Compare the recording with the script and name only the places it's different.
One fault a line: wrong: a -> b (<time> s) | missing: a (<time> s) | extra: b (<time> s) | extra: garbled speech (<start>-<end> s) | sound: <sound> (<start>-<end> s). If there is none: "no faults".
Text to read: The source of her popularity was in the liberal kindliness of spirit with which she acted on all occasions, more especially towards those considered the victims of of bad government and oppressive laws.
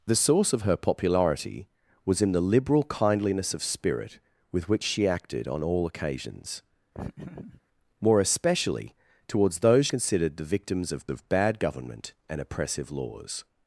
sound: laugh (6.9-7.6 s)